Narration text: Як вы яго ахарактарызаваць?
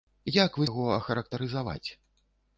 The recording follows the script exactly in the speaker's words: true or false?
true